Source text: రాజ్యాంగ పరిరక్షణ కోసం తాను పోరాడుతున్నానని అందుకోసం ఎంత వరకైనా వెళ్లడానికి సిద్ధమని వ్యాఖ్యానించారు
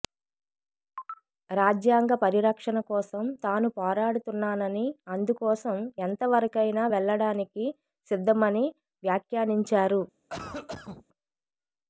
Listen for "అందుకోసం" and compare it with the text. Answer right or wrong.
right